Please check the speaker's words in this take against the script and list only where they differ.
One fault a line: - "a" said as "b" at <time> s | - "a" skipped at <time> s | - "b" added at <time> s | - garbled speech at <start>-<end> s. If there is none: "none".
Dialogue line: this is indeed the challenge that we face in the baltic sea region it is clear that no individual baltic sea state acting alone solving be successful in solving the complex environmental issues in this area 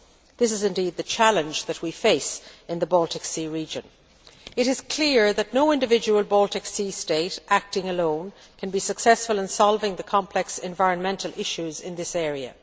- "solving" said as "can" at 8.6 s